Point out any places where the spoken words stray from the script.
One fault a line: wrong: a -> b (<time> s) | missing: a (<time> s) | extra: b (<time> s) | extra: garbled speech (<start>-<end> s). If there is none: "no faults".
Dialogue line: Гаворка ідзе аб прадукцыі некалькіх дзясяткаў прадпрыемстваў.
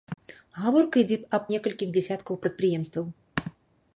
missing: прадукцыі (1.4 s)